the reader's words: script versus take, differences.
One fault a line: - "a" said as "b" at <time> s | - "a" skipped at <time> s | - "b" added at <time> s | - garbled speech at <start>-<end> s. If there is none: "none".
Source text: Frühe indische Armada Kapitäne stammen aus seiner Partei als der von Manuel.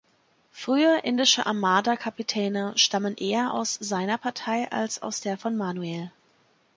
- "eher" added at 3.2 s
- "aus" added at 5.0 s